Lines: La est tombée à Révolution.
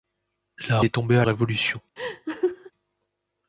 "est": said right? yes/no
yes